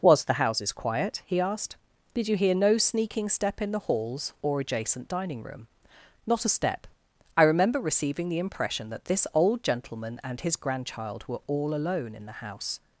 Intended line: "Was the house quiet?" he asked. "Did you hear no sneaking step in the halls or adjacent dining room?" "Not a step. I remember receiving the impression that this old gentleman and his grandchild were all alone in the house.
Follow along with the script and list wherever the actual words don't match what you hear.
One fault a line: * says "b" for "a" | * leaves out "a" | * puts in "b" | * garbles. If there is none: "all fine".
* says "houses" for "house"